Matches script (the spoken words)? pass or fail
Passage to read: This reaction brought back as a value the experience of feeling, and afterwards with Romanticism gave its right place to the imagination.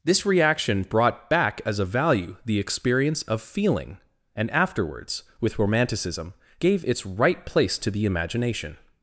pass